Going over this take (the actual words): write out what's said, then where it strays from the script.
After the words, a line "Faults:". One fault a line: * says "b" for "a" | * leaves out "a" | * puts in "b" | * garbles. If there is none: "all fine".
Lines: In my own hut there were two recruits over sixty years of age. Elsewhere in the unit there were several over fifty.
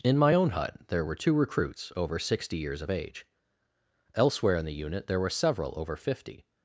In my own hut there were two recruits over sixty years of age. Elsewhere in the unit there were several over fifty.
Faults:
all fine